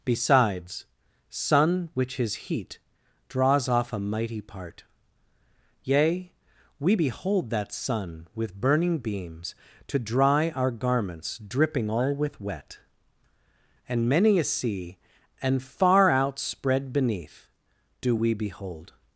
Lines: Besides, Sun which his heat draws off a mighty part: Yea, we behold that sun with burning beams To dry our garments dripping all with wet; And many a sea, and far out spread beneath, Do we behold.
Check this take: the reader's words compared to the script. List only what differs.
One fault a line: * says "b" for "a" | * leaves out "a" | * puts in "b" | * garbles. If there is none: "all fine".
all fine